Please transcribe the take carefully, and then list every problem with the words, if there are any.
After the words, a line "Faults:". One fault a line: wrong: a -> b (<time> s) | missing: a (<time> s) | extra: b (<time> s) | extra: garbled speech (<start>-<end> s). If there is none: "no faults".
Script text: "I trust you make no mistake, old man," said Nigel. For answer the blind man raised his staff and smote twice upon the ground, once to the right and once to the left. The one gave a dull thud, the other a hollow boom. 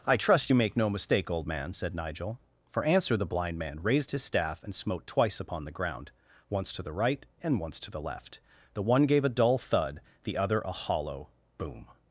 "I trust you make no mistake, old man," said Nigel. For answer the blind man raised his staff and smote twice upon the ground, once to the right and once to the left. The one gave a dull thud, the other a hollow boom.
Faults:
no faults